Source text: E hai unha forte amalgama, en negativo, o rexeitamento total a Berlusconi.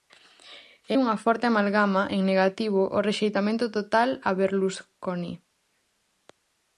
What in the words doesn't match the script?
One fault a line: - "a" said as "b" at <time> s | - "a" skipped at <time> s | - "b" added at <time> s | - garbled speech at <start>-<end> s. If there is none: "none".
- "hai" skipped at 0.9 s